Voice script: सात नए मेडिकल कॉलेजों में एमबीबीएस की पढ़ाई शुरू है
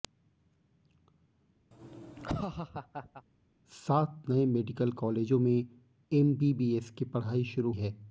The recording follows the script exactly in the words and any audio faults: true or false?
false